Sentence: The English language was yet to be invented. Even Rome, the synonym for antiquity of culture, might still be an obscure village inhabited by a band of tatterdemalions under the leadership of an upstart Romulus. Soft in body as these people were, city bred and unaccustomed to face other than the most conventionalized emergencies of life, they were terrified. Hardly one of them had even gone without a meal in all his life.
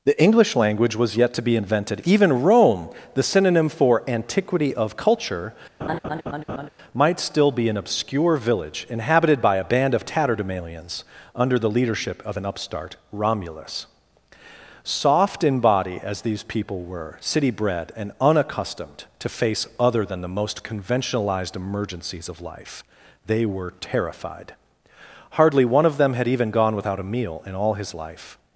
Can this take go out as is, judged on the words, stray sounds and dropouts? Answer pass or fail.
fail